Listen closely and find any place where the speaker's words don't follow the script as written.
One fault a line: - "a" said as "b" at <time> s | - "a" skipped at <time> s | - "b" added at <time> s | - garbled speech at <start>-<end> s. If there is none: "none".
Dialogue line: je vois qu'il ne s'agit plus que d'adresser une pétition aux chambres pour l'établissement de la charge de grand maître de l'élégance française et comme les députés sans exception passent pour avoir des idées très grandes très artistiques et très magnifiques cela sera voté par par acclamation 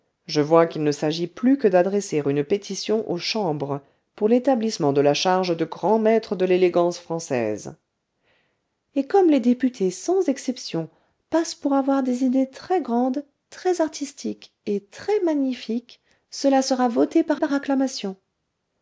none